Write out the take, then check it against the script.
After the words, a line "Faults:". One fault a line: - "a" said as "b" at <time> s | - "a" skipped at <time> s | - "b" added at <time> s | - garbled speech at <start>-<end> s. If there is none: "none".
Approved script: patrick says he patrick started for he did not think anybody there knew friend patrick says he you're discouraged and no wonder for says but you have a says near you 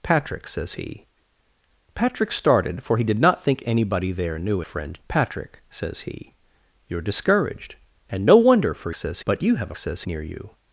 patrick says he patrick started for he did not think anybody there knew friend patrick says he you're discouraged and no wonder for says but you have a says near you
Faults:
none